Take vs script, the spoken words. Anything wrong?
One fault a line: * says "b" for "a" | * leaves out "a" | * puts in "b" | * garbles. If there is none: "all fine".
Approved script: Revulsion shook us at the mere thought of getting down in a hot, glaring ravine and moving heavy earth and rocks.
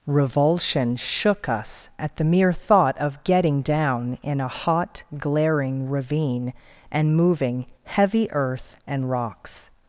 all fine